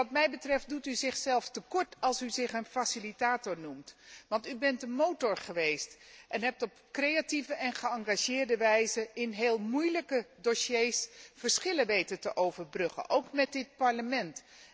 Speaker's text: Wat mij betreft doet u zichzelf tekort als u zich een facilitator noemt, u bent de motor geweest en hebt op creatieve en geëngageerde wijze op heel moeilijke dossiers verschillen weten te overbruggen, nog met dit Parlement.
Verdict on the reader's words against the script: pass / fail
fail